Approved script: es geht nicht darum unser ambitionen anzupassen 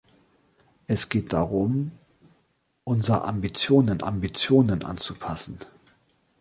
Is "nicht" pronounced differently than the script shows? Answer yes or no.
yes